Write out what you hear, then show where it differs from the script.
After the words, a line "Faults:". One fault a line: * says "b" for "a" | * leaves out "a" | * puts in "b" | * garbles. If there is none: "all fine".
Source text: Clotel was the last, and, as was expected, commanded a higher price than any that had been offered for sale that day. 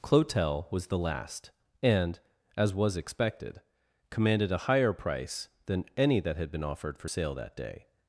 Clotel was the last, and, as was expected, commanded a higher price than any that had been offered for sale that day.
Faults:
all fine